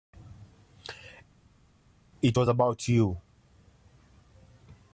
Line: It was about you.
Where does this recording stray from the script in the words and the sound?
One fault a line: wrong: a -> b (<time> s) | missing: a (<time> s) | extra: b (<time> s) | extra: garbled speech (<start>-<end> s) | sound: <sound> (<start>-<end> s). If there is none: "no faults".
no faults